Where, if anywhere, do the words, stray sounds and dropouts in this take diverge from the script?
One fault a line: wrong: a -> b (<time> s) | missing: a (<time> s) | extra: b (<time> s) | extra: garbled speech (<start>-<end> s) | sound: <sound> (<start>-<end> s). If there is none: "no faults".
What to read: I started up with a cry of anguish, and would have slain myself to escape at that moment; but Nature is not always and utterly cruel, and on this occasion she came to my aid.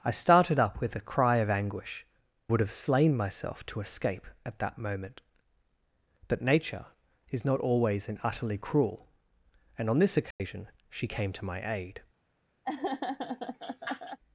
missing: and (2.1 s)
sound: dropout (10.3-10.4 s)
sound: laugh (12.6-14.2 s)